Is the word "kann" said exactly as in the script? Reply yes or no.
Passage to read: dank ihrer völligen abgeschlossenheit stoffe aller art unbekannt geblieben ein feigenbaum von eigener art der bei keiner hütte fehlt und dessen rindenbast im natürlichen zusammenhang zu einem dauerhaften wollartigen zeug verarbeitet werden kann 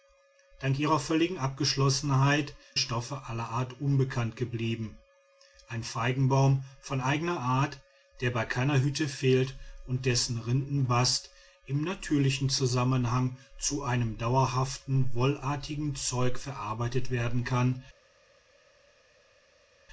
yes